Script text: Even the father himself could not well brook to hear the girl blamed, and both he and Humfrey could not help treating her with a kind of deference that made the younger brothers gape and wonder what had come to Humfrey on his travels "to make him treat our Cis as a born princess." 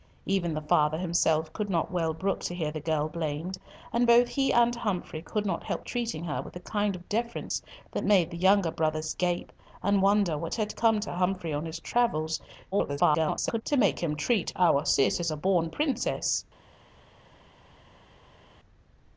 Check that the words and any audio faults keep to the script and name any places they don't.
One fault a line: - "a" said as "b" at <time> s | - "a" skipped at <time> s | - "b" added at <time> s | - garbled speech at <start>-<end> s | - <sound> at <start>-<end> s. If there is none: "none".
- garbled speech at 12.7-13.6 s